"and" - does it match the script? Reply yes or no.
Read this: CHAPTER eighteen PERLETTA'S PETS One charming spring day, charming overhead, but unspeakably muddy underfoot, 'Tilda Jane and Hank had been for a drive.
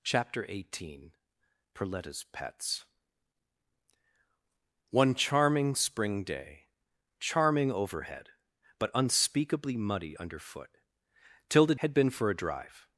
no